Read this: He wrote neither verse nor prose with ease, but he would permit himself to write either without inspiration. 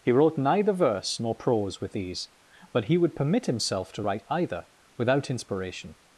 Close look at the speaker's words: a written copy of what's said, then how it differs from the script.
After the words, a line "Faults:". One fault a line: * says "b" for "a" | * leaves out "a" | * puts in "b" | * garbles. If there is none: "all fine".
He wrote neither verse nor prose with ease, but he would permit himself to write either without inspiration.
Faults:
all fine